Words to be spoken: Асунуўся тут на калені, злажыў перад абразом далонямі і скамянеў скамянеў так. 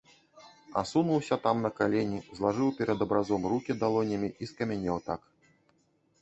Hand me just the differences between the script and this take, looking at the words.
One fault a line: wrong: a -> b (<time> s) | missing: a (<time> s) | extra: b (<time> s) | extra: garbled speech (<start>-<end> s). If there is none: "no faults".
wrong: тут -> там (1.4 s)
extra: рукі (3.5 s)
missing: скамянеў (5.0 s)